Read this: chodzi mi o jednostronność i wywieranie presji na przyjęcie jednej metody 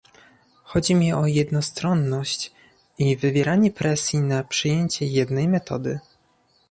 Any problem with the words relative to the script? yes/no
no